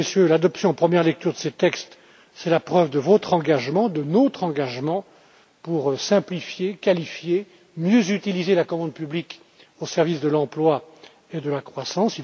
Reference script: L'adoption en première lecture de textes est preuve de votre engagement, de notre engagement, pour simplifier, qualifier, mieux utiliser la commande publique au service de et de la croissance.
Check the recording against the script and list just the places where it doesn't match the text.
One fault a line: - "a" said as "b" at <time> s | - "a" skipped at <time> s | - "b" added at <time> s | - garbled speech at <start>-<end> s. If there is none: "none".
- "ces" added at 1.4 s
- "la" added at 2.5 s
- "l'emploi" added at 10.3 s